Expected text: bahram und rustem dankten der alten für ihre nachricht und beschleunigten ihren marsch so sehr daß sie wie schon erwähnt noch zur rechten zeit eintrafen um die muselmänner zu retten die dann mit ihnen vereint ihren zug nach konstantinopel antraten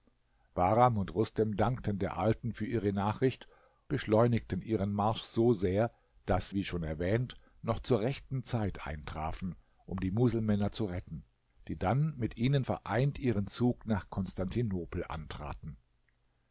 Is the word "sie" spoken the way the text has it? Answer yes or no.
no